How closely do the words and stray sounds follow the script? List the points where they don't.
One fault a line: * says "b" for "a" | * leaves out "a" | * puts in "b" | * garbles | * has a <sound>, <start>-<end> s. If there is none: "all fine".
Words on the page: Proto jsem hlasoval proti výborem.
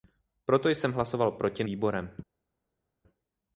all fine